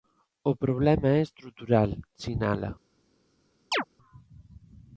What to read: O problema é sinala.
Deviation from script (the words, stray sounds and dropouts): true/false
true